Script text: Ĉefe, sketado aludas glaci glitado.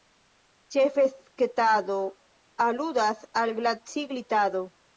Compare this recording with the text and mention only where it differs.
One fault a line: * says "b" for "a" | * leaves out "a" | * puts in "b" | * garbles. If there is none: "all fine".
* puts in "al"